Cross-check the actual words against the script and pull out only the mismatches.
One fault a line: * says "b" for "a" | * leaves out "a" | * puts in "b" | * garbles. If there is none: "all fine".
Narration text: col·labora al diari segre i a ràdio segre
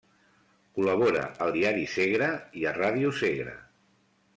all fine